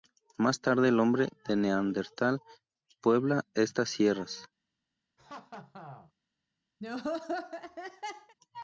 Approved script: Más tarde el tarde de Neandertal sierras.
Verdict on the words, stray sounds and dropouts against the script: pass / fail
fail